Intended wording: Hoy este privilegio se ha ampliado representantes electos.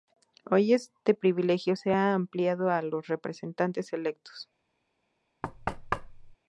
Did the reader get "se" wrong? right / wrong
right